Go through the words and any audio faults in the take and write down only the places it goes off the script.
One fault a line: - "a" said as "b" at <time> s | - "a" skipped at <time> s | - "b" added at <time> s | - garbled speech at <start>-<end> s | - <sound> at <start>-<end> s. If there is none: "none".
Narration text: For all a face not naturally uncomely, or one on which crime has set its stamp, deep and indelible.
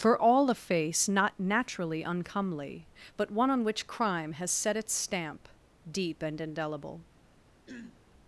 - "or" said as "but" at 3.2 s
- throat clearing at 7.7-8.0 s